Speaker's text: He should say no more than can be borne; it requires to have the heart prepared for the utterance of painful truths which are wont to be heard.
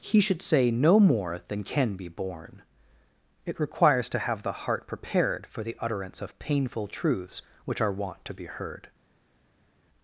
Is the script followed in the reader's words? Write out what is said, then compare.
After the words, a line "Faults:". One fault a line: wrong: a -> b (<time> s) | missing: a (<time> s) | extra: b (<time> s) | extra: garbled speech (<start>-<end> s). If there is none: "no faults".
He should say no more than can be borne; it requires to have the heart prepared for the utterance of painful truths which are wont to be heard.
Faults:
no faults